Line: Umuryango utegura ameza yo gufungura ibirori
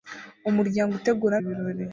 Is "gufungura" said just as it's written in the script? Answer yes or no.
no